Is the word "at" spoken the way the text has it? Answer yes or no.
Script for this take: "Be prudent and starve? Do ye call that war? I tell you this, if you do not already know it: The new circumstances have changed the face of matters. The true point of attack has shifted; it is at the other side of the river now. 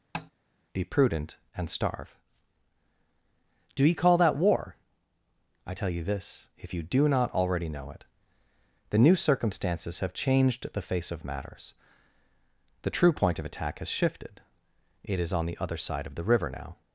no